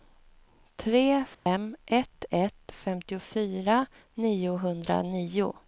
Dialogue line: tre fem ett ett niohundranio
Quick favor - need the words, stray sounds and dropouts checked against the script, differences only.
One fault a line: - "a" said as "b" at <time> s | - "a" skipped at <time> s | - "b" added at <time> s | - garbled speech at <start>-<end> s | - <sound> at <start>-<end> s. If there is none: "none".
- dropout at 1.3-1.5 s
- "femtiofyra" added at 2.7 s